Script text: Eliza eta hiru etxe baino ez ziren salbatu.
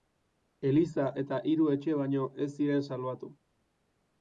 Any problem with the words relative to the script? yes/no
no